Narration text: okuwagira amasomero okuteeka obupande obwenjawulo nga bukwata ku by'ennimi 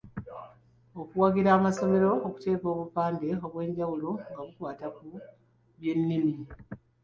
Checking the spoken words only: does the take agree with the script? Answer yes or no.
yes